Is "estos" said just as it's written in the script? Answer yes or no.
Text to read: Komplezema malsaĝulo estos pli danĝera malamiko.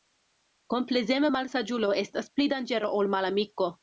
no